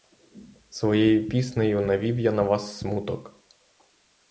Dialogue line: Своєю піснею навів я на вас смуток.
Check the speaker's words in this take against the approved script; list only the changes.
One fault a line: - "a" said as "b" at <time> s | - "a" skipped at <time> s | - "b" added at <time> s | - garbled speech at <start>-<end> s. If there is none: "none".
none